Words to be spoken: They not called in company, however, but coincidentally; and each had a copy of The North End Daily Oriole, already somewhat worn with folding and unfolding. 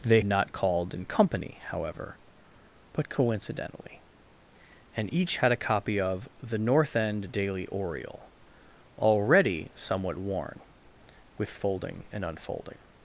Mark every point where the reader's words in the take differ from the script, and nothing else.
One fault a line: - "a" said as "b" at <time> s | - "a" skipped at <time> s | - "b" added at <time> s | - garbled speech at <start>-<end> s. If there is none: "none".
none